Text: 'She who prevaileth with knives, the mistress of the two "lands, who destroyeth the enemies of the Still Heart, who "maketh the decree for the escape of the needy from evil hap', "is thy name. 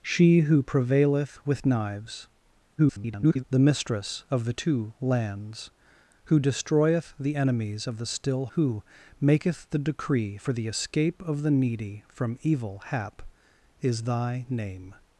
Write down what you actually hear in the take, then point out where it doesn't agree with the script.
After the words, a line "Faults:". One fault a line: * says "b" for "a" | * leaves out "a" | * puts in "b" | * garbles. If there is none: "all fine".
'She who prevaileth with knives, [garbled] the mistress of the two "lands, who destroyeth the enemies of the Still Who "maketh the decree for the escape of the needy from evil hap', "is thy name.
Faults:
* garbles
* leaves out "Heart"